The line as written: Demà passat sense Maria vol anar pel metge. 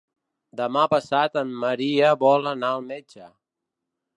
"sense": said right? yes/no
no